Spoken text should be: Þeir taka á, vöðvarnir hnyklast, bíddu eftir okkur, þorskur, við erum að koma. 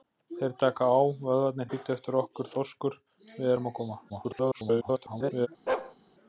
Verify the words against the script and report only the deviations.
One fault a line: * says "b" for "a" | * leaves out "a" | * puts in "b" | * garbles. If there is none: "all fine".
* leaves out "hnyklast"
* garbles